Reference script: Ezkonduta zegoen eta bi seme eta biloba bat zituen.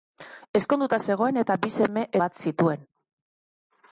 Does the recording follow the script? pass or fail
fail